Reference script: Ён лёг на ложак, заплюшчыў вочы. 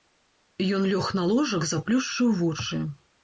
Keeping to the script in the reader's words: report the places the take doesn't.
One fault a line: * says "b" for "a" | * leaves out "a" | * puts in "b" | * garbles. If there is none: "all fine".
all fine